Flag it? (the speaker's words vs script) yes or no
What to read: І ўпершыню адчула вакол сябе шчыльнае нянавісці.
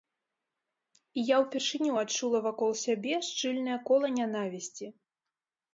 yes